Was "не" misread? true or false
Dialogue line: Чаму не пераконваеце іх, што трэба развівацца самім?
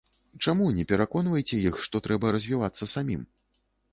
false